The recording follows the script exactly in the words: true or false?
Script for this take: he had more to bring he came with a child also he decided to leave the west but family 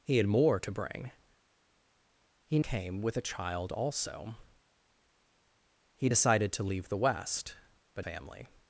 true